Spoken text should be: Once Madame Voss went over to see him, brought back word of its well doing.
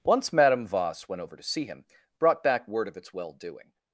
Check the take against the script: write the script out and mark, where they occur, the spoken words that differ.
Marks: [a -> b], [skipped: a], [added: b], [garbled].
Once Madame Voss went over to see him, brought back word of its well doing.